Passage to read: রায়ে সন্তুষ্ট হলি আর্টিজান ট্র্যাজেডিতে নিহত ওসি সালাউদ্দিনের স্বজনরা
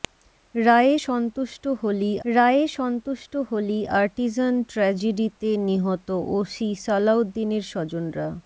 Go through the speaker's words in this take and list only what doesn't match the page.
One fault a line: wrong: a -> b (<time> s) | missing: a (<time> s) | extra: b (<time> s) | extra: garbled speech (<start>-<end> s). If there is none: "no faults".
extra: রায়ে সন্তুষ্ট হলি (2.2 s)